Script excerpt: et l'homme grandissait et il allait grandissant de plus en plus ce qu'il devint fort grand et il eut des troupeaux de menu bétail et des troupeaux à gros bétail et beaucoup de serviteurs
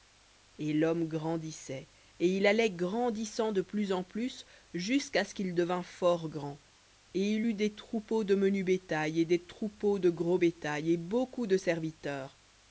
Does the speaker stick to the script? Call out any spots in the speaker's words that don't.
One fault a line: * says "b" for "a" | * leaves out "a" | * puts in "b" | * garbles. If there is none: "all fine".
* puts in "jusqu'à"
* says "de" for "à"